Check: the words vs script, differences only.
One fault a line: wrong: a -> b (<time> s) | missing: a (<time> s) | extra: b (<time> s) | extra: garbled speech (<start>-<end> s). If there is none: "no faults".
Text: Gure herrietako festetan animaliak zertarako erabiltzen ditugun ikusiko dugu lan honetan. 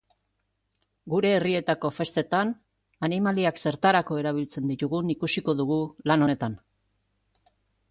no faults